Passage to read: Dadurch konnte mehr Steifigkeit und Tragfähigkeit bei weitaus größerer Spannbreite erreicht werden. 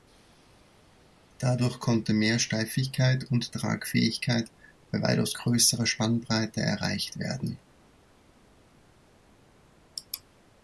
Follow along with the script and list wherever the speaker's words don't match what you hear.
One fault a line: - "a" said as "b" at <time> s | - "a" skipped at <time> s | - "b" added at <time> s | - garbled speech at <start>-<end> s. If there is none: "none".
none